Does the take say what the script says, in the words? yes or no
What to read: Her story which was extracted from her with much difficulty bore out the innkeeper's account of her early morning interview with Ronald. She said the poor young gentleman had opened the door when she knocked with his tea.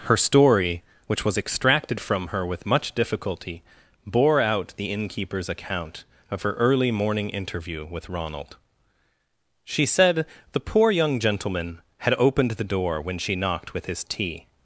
yes